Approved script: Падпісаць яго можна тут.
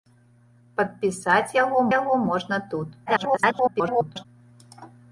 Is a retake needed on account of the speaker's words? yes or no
yes